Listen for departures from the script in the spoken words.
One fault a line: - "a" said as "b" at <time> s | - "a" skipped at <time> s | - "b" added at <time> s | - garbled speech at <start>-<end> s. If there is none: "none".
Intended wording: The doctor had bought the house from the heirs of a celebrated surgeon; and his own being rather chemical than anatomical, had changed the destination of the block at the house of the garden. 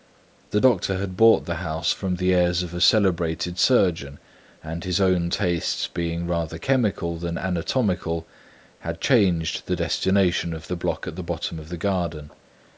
- "tastes" added at 5.3 s
- "house" said as "bottom" at 11.2 s